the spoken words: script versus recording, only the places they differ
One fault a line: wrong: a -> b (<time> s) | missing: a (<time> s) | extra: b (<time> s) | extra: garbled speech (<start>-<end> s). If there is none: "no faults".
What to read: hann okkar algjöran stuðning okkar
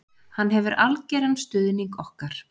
wrong: okkar -> hefur (0.5 s)